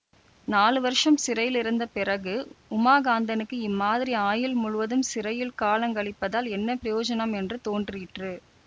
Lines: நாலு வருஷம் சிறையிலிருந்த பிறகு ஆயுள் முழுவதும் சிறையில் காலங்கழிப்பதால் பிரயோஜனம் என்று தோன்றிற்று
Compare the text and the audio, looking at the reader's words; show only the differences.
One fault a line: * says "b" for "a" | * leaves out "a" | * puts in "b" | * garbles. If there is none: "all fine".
* puts in "உமாகாந்தனுக்கு இம்மாதிரி"
* puts in "என்ன"